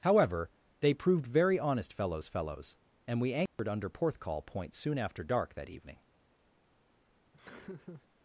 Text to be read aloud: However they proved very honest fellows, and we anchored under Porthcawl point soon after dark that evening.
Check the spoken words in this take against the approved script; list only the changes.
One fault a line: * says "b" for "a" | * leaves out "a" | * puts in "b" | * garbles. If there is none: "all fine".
* puts in "fellows"